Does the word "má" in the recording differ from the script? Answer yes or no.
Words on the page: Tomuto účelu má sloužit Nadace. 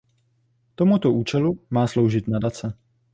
no